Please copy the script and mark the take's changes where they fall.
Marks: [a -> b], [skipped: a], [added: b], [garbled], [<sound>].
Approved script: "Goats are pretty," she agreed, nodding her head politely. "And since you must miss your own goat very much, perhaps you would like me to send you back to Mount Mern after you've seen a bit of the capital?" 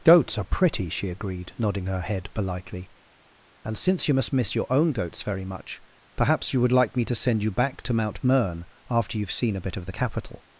"Goats are pretty," she agreed, nodding her head politely. "And since you must miss your own [goat -> goats] very much, perhaps you would like me to send you back to Mount Mern after you've seen a bit of the capital?"